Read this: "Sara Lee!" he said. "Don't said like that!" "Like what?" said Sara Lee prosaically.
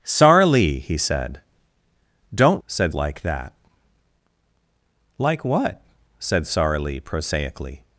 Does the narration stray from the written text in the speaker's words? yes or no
no